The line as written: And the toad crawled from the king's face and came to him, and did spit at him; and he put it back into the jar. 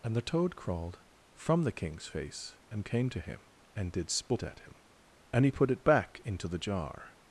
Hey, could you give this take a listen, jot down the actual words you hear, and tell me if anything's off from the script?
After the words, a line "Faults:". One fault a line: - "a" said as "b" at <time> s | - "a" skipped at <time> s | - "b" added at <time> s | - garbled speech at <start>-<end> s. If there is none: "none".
And the toad crawled from the king's face and came to him, and did spit at him; and he put it back into the jar.
Faults:
none